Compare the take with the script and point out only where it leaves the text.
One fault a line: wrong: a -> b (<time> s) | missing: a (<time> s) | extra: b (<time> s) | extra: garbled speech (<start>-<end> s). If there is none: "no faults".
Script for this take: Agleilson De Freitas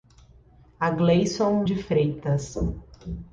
no faults